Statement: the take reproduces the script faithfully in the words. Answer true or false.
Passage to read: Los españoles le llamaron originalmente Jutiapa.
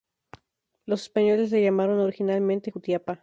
true